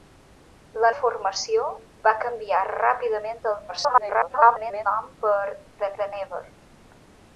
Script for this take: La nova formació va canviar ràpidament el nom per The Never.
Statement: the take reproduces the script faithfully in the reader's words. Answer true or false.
false